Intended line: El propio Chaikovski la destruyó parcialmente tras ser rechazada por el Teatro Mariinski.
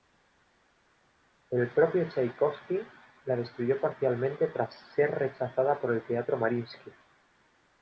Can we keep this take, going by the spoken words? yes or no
yes